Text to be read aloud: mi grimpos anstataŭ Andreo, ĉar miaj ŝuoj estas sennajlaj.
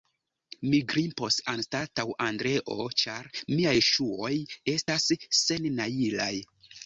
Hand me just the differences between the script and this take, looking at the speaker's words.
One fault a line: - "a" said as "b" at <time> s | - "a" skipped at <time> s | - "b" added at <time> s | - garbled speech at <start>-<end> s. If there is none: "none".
none